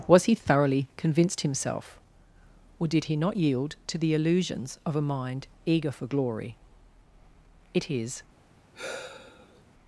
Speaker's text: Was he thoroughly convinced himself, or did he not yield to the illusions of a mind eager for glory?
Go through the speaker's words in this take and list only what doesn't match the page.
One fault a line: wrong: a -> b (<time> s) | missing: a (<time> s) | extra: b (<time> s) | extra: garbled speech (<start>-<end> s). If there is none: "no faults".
extra: It is (7.7 s)